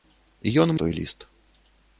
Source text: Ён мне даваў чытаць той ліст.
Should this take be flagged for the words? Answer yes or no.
yes